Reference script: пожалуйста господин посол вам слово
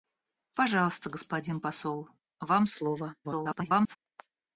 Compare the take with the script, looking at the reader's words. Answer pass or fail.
fail